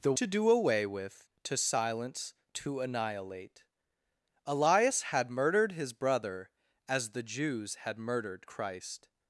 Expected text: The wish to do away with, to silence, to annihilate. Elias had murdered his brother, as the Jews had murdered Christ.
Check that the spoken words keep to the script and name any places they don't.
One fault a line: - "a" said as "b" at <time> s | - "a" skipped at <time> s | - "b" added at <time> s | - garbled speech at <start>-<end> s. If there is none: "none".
- "wish" skipped at 0.1 s